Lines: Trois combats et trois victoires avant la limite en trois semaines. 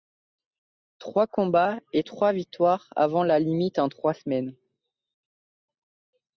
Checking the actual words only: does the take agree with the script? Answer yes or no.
yes